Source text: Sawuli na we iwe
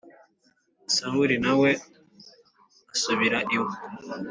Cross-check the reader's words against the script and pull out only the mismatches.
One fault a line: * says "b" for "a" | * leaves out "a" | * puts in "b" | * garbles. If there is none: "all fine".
* puts in "asubira"